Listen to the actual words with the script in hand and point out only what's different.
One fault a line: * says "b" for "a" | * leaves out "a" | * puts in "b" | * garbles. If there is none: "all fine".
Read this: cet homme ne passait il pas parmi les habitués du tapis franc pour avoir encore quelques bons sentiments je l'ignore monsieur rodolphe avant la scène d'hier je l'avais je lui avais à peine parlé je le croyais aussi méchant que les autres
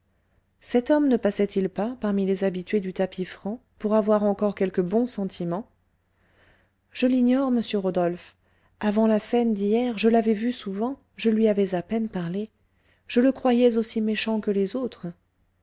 * puts in "vu souvent"